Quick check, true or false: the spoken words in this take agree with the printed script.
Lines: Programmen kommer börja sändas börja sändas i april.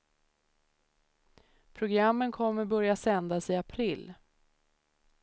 false